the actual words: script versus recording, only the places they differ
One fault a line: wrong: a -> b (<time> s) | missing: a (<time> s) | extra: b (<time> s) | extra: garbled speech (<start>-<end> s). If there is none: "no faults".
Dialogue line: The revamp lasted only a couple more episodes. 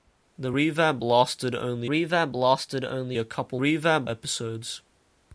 extra: revamp lasted only (1.8 s)
wrong: more -> revamp (3.6 s)